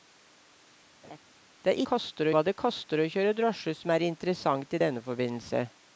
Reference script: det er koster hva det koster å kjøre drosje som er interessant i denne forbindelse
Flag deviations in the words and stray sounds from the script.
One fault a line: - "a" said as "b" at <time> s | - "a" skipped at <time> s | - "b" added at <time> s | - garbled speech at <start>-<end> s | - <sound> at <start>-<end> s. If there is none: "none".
- laugh at 1.0-1.2 s